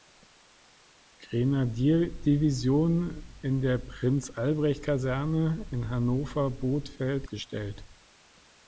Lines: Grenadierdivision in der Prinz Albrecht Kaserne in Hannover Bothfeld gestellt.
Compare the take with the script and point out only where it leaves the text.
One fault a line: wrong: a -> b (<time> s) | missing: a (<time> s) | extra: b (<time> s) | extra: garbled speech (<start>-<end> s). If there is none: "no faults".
no faults